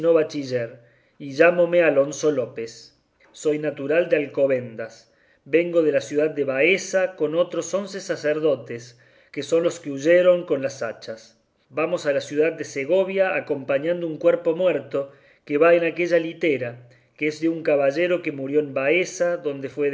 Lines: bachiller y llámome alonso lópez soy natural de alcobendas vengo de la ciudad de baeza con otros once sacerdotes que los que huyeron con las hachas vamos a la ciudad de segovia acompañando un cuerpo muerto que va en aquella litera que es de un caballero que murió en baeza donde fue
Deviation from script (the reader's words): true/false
true